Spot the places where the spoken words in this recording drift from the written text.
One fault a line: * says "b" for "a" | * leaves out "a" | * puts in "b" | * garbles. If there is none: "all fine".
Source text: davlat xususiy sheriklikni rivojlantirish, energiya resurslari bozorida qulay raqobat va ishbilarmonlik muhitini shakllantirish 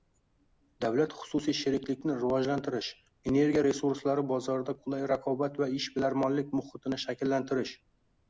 all fine